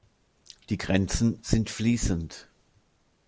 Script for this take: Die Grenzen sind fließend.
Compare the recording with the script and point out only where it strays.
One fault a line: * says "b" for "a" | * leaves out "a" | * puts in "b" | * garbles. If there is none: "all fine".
all fine